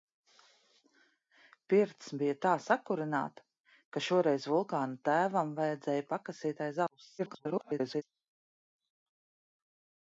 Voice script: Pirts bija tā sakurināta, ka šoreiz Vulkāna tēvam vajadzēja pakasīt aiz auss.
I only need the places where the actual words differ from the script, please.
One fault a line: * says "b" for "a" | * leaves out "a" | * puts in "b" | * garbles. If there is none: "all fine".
* garbles